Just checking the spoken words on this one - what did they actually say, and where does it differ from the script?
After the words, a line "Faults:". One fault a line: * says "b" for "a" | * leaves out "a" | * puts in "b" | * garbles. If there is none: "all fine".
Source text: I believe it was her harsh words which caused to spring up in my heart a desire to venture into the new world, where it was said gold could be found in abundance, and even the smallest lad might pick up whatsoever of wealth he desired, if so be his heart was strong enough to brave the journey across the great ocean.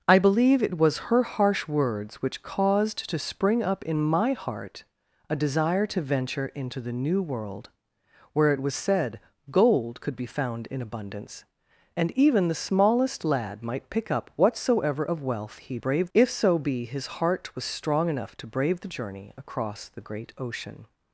I believe it was her harsh words which caused to spring up in my heart a desire to venture into the new world, where it was said gold could be found in abundance, and even the smallest lad might pick up whatsoever of wealth he brave, if so be his heart was strong enough to brave the journey across the great ocean.
Faults:
* says "brave" for "desired"